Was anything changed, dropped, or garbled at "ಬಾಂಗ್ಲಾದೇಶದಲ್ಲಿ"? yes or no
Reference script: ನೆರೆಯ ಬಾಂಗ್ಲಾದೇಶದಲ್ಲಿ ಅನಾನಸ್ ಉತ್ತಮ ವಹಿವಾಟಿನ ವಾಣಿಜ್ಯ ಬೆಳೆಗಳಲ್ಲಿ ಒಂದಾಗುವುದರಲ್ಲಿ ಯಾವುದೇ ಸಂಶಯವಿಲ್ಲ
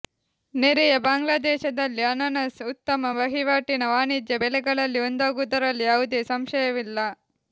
no